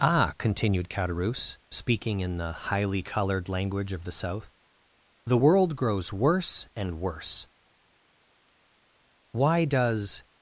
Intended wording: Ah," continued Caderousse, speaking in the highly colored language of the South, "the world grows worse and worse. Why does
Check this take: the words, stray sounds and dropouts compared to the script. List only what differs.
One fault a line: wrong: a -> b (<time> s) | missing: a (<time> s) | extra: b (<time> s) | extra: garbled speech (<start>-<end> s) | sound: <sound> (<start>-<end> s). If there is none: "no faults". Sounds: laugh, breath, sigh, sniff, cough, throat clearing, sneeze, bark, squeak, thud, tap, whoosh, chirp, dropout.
no faults